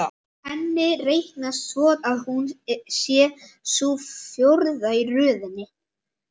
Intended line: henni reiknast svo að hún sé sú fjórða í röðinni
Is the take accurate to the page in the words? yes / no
yes